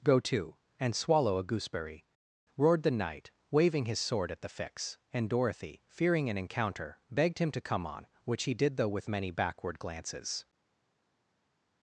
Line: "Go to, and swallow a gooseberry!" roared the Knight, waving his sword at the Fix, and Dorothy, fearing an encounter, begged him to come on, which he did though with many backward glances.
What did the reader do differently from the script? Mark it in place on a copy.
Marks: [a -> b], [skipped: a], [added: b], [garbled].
"Go to, and swallow a gooseberry!" roared the Knight, waving his sword at the Fix, and Dorothy, fearing an encounter, begged him to come on, which he did though with many backward glances.